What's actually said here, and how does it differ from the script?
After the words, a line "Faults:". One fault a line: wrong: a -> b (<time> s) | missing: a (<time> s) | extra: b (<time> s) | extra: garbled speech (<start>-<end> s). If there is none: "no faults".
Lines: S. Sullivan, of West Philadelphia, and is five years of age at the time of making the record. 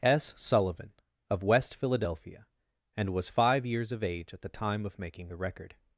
S. Sullivan, of West Philadelphia, and was five years of age at the time of making the record.
Faults:
wrong: is -> was (3.1 s)